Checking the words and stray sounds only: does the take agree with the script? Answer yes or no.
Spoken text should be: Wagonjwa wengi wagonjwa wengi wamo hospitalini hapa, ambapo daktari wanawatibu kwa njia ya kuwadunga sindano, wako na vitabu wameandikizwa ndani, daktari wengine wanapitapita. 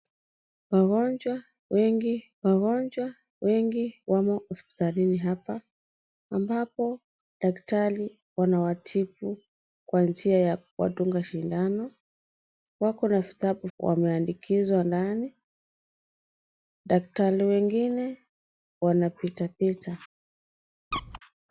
no